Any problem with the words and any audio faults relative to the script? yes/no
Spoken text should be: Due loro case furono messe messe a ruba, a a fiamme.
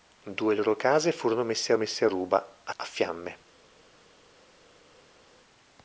no